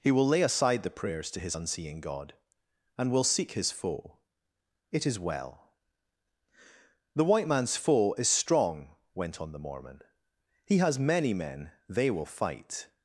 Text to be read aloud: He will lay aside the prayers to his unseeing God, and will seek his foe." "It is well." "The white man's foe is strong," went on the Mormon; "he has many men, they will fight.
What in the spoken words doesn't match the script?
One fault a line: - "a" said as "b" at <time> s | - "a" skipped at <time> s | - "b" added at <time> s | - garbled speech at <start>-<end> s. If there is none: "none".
none